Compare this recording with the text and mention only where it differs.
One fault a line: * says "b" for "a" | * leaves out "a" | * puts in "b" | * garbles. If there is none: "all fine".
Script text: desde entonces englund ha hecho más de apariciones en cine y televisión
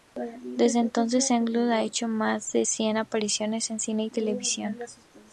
* puts in "cien"